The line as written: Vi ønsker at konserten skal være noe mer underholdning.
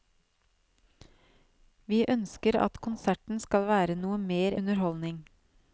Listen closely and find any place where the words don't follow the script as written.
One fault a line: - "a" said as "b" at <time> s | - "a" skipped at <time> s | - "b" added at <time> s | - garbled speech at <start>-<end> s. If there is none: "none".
none